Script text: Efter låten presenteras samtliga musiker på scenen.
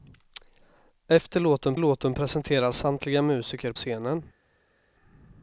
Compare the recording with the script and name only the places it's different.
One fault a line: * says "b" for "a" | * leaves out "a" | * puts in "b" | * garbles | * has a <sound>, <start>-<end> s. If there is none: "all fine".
* puts in "låten"
* leaves out "på"